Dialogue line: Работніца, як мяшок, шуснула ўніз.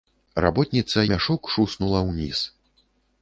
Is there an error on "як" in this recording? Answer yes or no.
yes